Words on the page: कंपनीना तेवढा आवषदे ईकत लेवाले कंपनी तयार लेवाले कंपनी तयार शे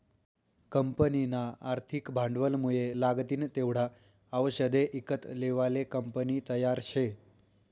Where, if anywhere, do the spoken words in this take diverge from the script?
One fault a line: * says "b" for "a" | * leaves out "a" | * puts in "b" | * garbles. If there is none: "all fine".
* puts in "आर्थिक भांडवलमुये लागतीन"
* leaves out "लेवाले कंपनी तयार"